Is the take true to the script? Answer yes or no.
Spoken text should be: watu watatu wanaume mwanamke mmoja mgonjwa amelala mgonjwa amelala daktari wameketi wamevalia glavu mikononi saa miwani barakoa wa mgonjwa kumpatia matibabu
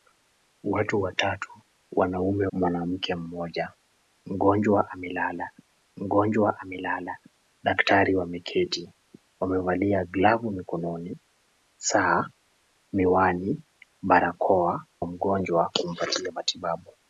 yes